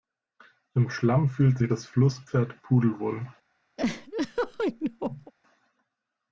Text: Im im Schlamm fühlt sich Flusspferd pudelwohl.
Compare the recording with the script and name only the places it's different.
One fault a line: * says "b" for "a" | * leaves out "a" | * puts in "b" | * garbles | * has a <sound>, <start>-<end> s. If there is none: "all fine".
* leaves out "im"
* puts in "das"
* has a laugh, 3.8-5.3 s